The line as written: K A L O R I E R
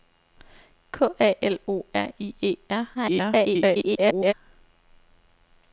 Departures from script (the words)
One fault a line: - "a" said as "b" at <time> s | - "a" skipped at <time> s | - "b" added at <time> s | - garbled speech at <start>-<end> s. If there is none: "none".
- garbled speech at 2.9-4.3 s